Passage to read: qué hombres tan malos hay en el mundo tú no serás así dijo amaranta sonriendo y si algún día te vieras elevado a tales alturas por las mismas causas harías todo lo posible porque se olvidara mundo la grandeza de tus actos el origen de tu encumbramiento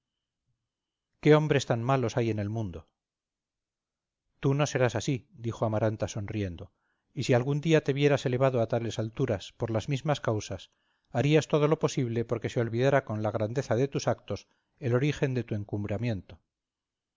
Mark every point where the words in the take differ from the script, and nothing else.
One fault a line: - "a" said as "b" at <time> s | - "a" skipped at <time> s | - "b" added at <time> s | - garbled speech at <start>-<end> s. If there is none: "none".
- "mundo" said as "con" at 13.0 s